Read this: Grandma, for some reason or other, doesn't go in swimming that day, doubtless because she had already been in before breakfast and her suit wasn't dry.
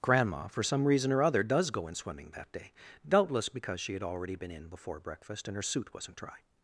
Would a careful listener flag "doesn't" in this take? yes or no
yes